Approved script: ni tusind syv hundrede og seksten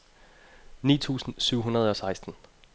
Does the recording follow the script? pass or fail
pass